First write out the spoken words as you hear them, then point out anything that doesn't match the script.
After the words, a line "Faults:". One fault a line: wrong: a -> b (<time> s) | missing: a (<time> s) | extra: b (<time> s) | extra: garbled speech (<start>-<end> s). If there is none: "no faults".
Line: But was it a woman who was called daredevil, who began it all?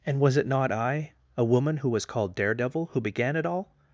And was it not I, a woman who was called daredevil, who began it all?
Faults:
wrong: But -> And (0.1 s)
extra: not I (0.5 s)